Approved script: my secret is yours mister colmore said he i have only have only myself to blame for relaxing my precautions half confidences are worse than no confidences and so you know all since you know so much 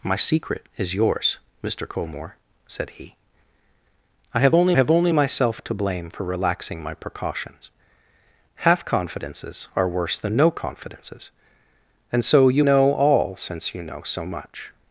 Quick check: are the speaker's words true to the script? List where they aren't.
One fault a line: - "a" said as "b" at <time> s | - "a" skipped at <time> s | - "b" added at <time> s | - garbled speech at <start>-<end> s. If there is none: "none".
none